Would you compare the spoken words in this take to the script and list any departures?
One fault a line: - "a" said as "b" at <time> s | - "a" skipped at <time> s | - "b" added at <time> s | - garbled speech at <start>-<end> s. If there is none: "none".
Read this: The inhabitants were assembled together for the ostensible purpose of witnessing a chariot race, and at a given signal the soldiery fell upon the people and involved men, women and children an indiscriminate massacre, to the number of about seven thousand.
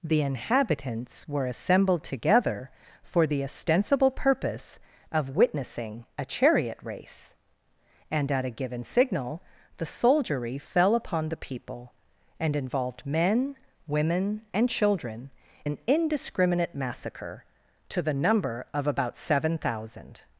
none